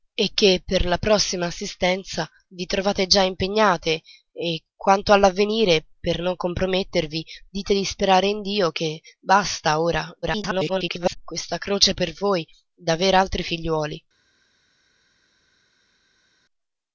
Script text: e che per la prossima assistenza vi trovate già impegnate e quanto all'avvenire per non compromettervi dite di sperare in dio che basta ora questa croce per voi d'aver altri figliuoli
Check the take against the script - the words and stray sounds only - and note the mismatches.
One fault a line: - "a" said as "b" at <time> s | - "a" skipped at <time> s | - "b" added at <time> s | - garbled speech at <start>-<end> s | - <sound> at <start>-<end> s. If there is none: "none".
- garbled speech at 10.2-11.2 s